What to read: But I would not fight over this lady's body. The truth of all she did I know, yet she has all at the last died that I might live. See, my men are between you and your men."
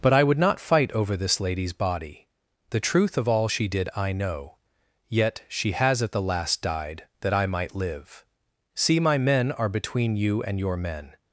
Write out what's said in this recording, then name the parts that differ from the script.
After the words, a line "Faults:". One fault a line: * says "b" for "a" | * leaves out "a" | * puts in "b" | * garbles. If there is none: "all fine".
But I would not fight over this lady's body. The truth of all she did I know, yet she has at the last died that I might live. See, my men are between you and your men."
Faults:
* leaves out "all"